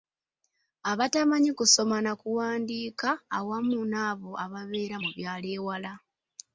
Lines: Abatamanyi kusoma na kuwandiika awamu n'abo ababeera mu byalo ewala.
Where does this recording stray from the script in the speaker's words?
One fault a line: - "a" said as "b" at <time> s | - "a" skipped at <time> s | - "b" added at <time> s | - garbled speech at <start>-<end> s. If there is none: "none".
none